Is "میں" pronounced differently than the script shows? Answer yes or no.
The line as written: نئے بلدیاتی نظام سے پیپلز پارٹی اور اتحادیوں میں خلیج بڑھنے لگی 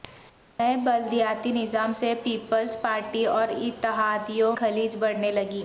yes